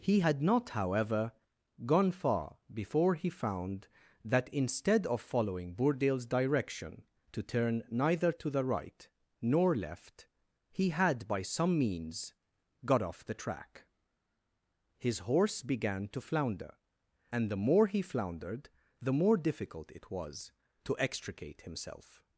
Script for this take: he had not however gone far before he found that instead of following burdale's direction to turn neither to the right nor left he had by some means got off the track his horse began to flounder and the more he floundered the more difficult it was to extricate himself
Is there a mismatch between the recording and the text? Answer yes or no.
no